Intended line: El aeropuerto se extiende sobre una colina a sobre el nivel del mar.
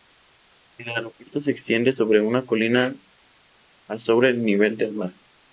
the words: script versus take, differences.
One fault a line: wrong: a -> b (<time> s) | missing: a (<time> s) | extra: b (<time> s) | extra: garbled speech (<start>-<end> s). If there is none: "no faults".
no faults